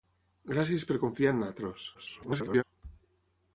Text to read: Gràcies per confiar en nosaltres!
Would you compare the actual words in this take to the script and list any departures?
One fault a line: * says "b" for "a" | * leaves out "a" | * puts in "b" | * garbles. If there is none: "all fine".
* garbles